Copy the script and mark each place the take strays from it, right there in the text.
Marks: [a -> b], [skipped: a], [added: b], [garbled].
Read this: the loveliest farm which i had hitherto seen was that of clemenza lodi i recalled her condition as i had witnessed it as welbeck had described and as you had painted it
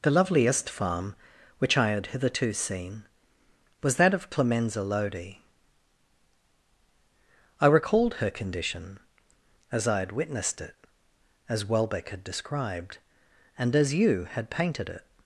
the loveliest farm which i had hitherto seen was that of clemenza lodi i recalled her condition as i had witnessed it as welbeck had described and as you had painted it